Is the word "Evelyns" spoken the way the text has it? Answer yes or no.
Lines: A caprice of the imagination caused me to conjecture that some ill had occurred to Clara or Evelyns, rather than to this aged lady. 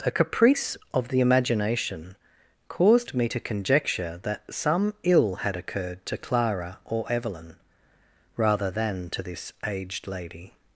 no